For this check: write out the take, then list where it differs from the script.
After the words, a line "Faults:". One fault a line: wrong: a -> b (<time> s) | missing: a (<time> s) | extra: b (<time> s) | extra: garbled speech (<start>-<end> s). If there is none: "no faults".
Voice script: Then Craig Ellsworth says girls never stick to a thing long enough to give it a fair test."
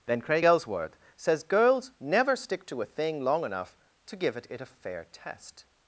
Then Craig Ellsworth says girls never stick to a thing long enough to give it it a fair test."
Faults:
extra: it (4.5 s)